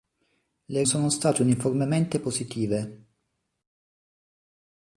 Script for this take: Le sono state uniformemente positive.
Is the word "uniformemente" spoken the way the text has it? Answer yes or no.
yes